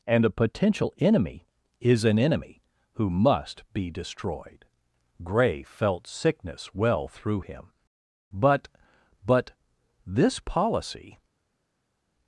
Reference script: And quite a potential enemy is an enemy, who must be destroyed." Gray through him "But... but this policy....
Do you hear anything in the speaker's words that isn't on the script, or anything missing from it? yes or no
yes